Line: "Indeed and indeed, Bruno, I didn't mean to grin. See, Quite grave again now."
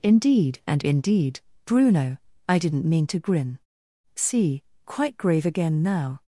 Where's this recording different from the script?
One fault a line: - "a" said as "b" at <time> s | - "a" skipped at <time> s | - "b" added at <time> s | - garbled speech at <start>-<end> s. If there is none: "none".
none